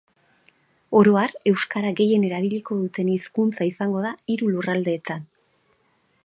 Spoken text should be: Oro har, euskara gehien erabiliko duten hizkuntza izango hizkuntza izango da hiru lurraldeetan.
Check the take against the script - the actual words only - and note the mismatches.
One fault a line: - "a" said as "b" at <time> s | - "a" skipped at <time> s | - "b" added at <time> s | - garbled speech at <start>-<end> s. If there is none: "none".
- "hizkuntza izango" skipped at 4.1 s